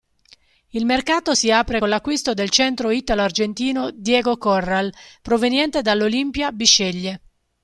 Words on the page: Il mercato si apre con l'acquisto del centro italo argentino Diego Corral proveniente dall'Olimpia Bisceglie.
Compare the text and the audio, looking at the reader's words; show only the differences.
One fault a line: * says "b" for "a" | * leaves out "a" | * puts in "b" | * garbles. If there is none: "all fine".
all fine